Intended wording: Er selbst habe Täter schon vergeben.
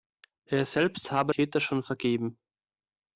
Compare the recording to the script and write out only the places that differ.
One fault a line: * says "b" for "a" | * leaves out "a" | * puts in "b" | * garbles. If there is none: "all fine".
all fine